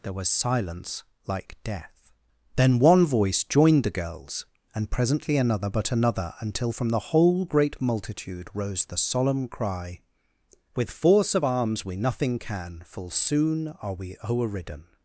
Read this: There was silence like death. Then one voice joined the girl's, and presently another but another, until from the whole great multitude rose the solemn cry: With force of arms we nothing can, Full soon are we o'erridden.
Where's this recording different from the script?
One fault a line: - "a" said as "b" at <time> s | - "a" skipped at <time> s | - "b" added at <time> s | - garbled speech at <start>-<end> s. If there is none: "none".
none